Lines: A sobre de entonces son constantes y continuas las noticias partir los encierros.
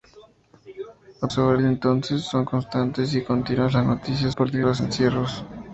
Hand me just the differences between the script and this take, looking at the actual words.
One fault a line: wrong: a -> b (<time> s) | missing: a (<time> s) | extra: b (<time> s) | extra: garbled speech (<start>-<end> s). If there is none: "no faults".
no faults